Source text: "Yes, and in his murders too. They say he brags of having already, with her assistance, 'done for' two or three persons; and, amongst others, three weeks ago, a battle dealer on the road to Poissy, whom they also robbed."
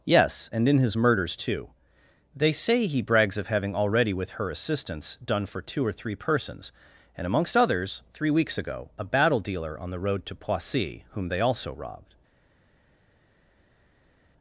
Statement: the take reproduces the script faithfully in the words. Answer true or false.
true